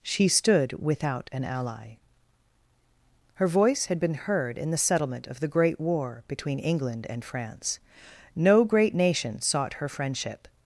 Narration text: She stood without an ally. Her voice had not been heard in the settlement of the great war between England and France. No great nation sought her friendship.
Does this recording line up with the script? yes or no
no